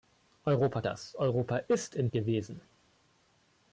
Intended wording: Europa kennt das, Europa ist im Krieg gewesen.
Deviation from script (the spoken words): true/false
true